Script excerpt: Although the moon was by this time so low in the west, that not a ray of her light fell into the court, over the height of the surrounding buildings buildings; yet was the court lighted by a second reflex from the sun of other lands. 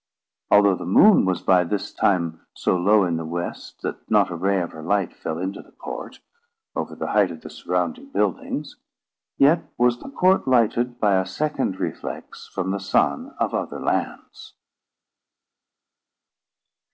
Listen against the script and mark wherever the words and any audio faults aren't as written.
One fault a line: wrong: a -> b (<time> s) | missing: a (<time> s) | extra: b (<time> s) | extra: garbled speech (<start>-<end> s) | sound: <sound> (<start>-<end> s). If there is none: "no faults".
missing: buildings (8.8 s)